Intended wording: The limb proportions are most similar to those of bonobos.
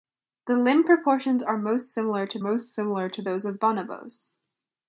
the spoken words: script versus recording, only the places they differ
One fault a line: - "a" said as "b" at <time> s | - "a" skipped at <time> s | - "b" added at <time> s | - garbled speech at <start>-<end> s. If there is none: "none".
- "most similar to" added at 2.4 s